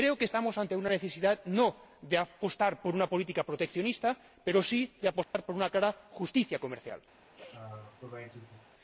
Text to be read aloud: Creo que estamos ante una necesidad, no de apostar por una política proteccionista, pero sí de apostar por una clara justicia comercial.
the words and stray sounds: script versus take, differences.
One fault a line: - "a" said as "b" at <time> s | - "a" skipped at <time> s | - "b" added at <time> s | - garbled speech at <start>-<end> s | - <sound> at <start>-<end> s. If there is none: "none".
- dropout at 5.2-5.3 s
- sneeze at 7.4-8.7 s